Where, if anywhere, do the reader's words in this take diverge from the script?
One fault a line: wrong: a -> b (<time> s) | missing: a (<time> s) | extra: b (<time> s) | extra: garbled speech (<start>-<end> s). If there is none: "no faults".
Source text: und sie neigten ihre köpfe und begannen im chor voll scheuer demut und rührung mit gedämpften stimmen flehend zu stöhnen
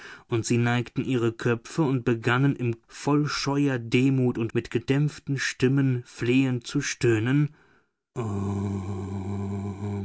missing: chor (2.8 s)
missing: rührung (4.5 s)